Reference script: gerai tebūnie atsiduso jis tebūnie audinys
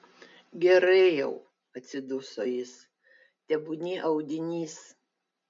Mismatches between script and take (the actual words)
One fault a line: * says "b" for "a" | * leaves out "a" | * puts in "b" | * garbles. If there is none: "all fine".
* says "jau" for "tebūnie"